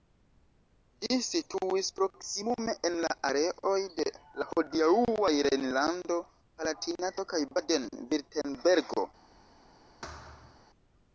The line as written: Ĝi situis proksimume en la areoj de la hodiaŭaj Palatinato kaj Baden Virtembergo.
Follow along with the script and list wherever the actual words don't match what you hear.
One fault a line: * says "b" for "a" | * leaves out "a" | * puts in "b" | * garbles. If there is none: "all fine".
* puts in "Rejnlando"